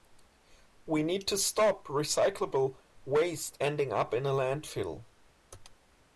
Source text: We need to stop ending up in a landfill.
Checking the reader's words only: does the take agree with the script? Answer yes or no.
no